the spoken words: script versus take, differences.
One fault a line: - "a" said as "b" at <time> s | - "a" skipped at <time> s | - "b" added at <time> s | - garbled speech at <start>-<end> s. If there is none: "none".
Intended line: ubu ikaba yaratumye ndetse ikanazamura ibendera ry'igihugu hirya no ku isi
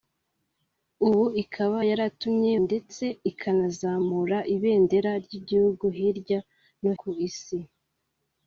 none